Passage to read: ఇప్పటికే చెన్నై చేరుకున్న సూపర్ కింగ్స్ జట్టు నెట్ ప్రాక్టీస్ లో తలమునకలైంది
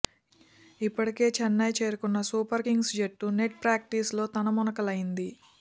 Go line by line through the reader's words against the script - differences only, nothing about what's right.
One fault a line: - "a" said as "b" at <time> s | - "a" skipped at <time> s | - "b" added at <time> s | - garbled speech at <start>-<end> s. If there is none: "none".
none